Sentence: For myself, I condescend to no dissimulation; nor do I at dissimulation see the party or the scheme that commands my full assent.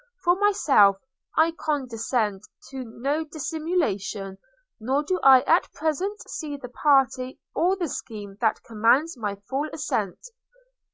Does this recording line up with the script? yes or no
no